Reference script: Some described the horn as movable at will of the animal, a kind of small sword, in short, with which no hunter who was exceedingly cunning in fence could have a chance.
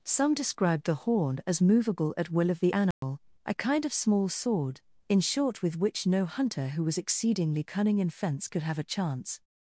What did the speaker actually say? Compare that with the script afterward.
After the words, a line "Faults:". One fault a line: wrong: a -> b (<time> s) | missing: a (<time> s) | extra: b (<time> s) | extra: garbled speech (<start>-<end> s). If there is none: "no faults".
Some described the horn as movable at will of the animal, a kind of small sword, in short, with which no hunter who was exceedingly cunning in fence could have a chance.
Faults:
no faults